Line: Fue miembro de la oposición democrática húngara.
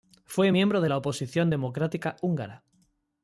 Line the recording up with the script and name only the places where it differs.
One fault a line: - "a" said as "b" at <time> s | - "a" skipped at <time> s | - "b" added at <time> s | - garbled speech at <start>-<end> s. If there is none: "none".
none